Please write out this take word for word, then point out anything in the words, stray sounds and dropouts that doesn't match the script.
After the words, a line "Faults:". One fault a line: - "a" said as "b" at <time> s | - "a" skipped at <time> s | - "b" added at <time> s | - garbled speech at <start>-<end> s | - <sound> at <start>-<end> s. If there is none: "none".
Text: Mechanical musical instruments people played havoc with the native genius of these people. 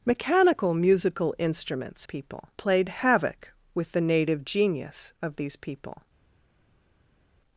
Mechanical musical instruments people played havoc with the native genius of these people.
Faults:
none